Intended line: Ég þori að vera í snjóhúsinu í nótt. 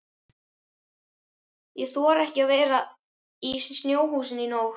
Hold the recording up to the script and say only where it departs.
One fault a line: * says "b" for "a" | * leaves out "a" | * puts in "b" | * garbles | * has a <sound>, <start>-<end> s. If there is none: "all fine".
* puts in "ekki"